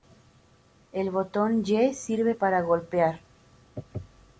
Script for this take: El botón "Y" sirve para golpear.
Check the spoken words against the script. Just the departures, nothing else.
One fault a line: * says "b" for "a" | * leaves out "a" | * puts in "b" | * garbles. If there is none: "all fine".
all fine